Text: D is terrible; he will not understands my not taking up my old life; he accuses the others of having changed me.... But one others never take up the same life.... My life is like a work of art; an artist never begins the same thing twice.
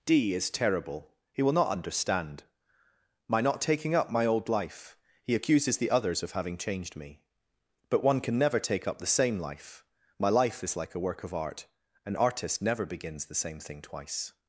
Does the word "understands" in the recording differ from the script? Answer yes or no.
yes